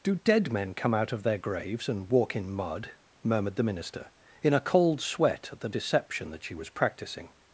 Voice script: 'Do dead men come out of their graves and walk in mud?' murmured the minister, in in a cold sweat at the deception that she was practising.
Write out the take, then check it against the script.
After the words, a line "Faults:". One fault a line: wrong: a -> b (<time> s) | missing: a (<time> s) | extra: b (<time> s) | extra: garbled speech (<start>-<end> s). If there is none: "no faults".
'Do dead men come out of their graves and walk in mud?' murmured the minister, in a cold sweat at the deception that she was practising.
Faults:
missing: in (4.5 s)